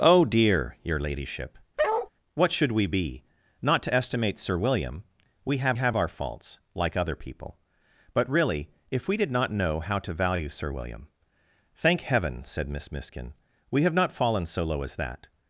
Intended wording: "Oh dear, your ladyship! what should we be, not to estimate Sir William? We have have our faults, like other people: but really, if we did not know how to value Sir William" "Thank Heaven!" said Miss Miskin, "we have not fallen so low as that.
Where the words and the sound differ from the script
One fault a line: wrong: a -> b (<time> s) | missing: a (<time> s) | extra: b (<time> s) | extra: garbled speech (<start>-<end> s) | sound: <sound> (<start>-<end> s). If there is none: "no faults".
sound: bark (1.8-2.1 s)